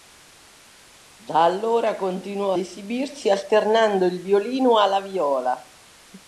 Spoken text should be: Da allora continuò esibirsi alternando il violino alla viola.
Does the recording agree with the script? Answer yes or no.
yes